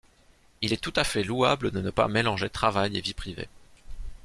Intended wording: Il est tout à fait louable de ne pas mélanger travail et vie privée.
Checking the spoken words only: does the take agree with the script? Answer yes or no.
yes